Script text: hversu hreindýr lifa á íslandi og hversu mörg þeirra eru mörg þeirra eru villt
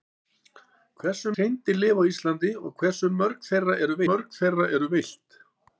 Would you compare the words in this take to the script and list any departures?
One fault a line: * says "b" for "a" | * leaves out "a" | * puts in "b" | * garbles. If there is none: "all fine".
all fine